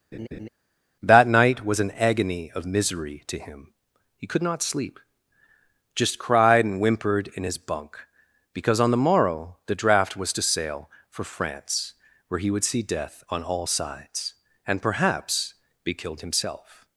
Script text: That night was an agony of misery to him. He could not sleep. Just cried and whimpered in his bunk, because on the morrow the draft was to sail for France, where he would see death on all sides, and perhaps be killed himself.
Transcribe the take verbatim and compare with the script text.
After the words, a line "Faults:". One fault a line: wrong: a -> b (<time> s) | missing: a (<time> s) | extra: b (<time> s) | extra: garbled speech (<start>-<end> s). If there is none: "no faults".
That night was an agony of misery to him. He could not sleep. Just cried and whimpered in his bunk, because on the morrow the draft was to sail for France, where he would see death on all sides, and perhaps be killed himself.
Faults:
no faults